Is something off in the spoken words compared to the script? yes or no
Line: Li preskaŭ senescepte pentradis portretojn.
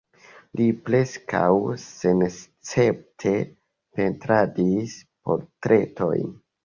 no